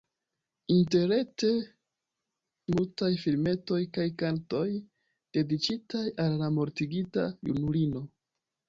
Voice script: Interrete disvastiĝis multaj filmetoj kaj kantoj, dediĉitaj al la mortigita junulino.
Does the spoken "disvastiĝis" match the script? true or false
false